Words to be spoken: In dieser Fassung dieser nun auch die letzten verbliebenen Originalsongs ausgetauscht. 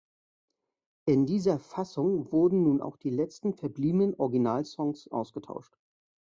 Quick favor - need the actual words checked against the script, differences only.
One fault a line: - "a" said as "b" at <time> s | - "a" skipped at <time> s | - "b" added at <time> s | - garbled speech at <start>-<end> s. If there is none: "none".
- "dieser" said as "wurden" at 2.3 s